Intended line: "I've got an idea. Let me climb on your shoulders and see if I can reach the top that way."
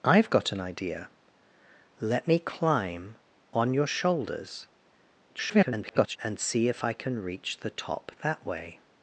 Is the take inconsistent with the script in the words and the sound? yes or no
yes